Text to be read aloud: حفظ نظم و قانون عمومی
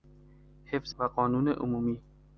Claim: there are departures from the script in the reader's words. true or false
true